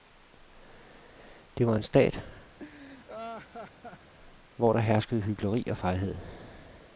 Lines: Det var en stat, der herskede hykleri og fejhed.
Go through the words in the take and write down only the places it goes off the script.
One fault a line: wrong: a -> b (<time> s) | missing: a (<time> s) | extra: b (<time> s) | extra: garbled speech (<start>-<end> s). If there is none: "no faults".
extra: hvor (4.5 s)